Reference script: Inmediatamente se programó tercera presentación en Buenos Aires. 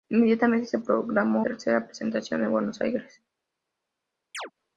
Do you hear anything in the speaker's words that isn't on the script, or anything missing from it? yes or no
no